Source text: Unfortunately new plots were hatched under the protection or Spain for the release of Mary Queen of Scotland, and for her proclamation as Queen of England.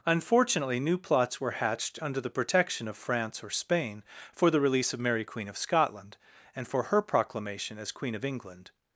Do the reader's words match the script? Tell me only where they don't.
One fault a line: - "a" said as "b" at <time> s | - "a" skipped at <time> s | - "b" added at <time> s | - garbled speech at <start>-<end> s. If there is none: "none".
- "of France" added at 2.9 s